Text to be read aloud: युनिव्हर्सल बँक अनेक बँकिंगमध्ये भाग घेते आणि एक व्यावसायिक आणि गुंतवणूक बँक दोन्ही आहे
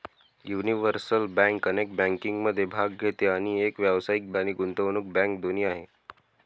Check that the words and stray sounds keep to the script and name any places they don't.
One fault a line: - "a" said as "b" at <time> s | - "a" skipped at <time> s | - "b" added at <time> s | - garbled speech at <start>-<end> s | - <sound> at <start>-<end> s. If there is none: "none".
none